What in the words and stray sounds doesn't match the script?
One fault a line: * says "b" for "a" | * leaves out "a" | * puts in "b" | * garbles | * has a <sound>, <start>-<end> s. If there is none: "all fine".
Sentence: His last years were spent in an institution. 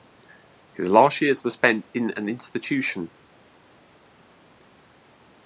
all fine